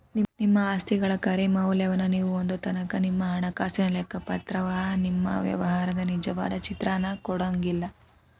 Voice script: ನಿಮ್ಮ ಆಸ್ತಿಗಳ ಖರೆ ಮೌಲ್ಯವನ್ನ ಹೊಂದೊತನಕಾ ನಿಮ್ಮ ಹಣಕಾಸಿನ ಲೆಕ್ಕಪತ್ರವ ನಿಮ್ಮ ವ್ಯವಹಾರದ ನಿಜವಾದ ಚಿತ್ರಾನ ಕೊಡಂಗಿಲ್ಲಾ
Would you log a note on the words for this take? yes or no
yes